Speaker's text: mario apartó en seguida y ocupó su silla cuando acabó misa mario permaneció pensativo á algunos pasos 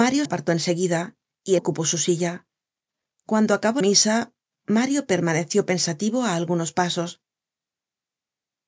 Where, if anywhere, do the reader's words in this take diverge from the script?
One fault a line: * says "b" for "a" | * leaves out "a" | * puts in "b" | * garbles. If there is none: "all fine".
all fine